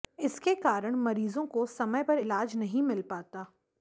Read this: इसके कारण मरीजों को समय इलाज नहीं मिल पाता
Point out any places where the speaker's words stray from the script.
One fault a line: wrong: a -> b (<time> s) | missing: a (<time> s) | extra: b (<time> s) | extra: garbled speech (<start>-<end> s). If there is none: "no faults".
extra: पर (2.0 s)